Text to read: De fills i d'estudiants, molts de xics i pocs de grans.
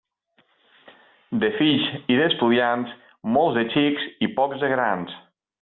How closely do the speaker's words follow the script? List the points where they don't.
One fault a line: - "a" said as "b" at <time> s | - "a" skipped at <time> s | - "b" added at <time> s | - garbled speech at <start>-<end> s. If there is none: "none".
none